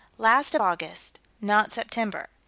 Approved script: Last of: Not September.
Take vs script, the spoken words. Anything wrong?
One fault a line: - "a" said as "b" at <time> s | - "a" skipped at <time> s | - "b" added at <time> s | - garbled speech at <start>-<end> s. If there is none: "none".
- "August" added at 0.6 s